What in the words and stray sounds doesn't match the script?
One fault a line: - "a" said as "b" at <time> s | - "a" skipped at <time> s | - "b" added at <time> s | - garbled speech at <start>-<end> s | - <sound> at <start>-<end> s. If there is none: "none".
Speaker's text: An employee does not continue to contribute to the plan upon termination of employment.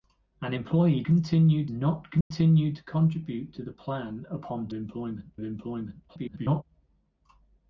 - "does" said as "continue" at 1.1 s
- dropout at 2.2-2.3 s
- "termination" said as "employment" at 4.7 s
- garbled speech at 6.1-6.6 s